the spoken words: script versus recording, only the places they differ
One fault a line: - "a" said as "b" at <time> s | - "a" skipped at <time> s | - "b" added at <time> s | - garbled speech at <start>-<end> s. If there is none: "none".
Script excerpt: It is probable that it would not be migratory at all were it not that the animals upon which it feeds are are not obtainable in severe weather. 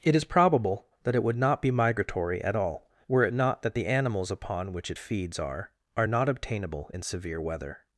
none